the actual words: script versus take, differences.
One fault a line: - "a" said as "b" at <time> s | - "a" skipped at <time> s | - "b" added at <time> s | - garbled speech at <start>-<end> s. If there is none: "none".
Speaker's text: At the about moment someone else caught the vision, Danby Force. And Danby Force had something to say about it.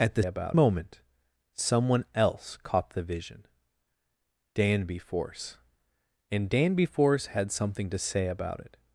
none